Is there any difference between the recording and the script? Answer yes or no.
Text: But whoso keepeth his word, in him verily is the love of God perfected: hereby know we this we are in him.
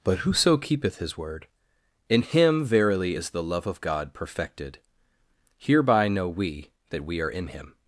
yes